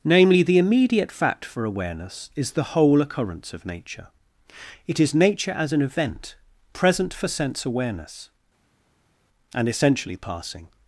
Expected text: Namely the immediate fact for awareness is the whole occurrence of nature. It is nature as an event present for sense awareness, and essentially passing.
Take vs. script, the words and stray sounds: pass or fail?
pass